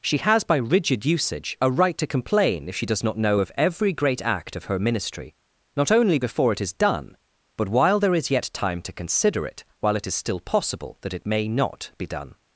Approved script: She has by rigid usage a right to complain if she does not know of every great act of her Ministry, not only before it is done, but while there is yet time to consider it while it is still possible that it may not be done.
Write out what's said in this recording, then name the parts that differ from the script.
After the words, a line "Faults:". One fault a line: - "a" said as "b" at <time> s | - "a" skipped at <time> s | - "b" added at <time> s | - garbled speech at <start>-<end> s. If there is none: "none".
She has by rigid usage a right to complain if she does not know of every great act of her Ministry, not only before it is done, but while there is yet time to consider it while it is still possible that it may not be done.
Faults:
none